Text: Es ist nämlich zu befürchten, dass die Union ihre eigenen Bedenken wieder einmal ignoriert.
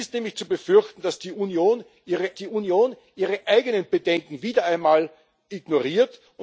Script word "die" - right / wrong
right